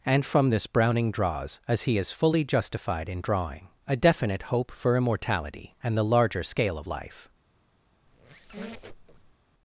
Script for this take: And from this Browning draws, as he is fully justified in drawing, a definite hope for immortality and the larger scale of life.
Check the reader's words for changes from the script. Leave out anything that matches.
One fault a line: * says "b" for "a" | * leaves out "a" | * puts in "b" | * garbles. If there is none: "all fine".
all fine